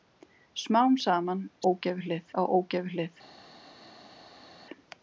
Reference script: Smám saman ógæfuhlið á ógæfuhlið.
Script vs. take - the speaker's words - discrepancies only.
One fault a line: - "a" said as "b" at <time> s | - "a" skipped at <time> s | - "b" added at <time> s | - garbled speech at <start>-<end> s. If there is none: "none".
none